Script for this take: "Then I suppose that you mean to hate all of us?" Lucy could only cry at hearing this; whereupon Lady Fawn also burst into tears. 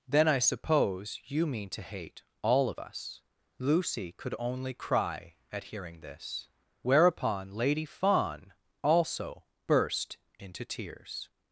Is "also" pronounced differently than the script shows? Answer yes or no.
no